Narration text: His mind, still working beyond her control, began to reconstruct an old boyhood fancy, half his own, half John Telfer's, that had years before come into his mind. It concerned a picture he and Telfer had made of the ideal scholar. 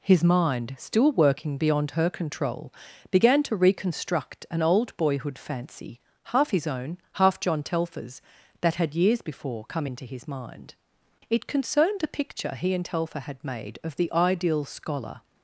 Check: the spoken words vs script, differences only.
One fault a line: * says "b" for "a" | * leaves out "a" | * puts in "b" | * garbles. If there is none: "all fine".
all fine